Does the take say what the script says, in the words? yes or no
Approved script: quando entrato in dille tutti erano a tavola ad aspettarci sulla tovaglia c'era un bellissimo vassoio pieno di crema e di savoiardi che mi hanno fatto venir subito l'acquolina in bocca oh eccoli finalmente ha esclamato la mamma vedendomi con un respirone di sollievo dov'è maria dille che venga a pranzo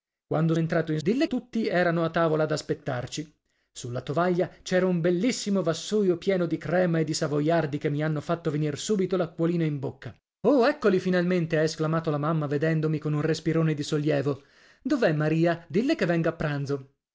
yes